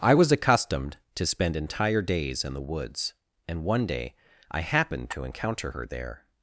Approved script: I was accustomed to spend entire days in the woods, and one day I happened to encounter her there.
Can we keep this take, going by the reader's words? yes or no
yes